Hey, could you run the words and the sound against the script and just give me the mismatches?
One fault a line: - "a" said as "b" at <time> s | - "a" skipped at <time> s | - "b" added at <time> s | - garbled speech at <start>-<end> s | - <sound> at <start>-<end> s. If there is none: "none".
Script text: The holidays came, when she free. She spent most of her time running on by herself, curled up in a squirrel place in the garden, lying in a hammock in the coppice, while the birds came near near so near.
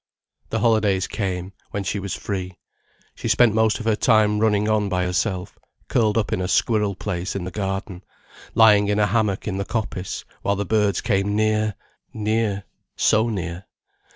- "was" added at 2.0 s